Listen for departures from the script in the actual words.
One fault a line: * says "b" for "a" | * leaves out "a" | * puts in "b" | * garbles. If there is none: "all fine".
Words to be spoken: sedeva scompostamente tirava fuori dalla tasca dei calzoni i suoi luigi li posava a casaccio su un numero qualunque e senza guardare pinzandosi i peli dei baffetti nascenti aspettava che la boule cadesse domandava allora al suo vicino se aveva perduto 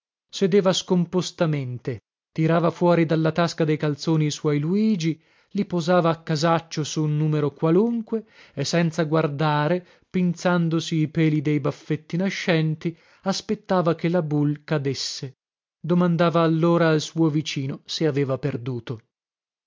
all fine